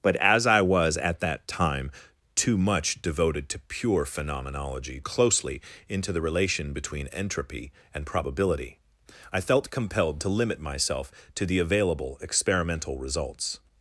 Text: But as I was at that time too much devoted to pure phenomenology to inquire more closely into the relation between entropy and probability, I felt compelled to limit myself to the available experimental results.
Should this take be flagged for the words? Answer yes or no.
yes